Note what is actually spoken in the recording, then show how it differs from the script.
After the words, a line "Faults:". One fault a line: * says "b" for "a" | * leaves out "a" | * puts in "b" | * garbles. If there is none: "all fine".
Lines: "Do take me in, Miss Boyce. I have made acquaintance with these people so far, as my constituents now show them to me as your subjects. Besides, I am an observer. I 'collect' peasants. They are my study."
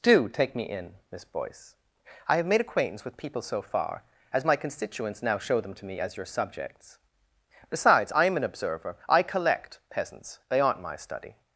"Do take me in, Miss Boyce. I have made acquaintance with people so far, as my constituents now show them to me as your subjects. Besides, I am an observer. I 'collect' peasants. They aren't my study."
Faults:
* leaves out "these"
* says "aren't" for "are"